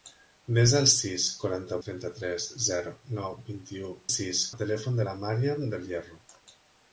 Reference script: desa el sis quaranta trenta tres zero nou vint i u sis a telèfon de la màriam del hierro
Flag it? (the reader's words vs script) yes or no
no